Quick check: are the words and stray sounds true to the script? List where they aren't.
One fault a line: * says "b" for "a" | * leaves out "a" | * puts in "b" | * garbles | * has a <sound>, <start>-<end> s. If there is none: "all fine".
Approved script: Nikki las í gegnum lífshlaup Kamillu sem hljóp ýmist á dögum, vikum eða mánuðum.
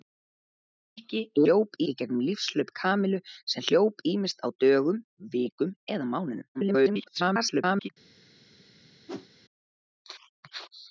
* says "hljóp" for "las"
* garbles
* has a whoosh, 9.1-9.3 s